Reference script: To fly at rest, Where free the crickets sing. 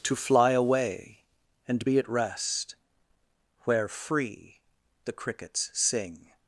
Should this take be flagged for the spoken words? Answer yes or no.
yes